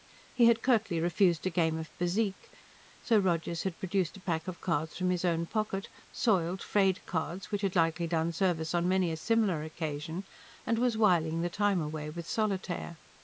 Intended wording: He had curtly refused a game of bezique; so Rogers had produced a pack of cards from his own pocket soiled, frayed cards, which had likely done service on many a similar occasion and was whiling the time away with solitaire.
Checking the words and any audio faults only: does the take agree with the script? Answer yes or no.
yes